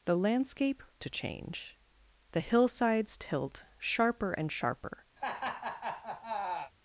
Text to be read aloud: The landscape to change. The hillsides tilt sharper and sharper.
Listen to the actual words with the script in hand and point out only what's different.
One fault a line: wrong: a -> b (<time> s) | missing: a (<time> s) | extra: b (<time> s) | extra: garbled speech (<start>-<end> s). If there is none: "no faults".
no faults